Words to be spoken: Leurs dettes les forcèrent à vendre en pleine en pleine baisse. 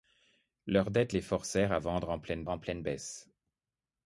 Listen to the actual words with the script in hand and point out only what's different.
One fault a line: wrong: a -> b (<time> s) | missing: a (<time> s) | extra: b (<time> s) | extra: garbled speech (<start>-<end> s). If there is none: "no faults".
no faults